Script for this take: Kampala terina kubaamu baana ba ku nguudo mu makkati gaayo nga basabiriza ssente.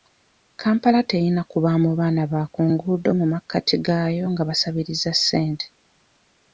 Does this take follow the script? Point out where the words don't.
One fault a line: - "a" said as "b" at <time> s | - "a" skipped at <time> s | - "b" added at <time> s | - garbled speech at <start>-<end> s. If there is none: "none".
none